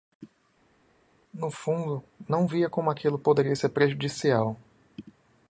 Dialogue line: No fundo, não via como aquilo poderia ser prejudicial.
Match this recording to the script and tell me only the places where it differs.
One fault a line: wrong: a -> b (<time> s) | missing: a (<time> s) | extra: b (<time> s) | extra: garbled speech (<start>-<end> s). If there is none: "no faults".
no faults